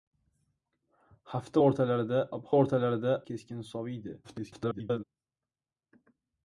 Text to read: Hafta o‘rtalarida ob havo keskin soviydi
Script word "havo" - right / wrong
wrong